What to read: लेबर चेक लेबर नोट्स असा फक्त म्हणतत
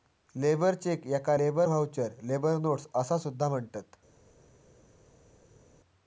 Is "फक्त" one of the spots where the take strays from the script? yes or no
yes